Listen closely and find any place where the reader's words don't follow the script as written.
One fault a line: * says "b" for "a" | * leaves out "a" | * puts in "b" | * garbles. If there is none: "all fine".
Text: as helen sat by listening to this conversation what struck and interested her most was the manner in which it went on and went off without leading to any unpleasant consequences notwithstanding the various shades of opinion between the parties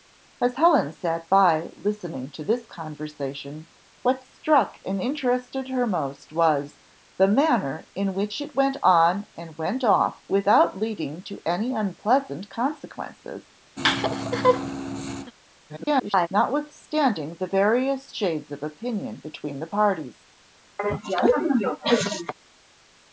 * garbles